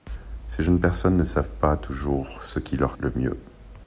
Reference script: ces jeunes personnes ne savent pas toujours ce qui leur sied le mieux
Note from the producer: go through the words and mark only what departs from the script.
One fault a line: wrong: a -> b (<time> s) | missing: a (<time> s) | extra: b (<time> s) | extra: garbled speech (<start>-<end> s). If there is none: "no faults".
missing: sied (3.0 s)